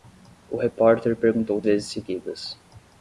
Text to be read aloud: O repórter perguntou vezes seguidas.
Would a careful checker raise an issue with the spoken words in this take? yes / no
no